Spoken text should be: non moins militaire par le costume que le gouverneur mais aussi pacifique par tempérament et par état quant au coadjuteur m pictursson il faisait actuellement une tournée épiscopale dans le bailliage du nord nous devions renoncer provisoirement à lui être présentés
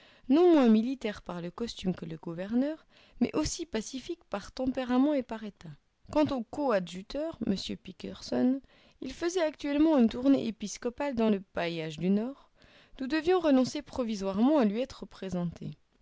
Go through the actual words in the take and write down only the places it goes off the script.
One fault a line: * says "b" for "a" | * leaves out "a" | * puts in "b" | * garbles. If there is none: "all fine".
all fine